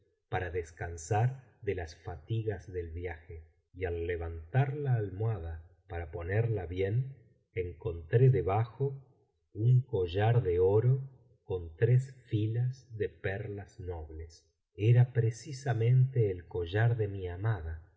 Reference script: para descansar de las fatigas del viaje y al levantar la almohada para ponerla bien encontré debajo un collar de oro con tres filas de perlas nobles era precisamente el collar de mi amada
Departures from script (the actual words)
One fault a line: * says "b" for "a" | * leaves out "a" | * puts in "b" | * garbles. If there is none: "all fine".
all fine